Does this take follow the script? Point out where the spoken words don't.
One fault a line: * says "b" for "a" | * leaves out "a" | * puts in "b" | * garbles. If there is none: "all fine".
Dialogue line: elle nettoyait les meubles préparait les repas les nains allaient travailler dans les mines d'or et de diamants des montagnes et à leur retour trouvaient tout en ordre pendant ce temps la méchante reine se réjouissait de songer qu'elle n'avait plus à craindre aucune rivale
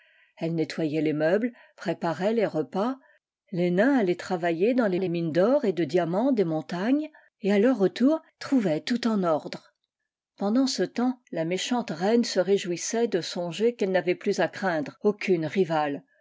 * puts in "les"